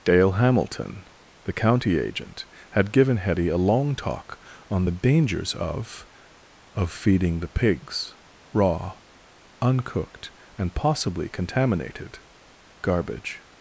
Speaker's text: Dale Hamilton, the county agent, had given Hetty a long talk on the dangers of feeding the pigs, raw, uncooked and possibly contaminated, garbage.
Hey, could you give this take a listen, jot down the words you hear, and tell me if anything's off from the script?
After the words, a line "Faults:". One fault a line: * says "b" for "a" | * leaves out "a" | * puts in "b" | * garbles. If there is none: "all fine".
Dale Hamilton, the county agent, had given Hetty a long talk on the dangers of of feeding the pigs, raw, uncooked and possibly contaminated, garbage.
Faults:
* puts in "of"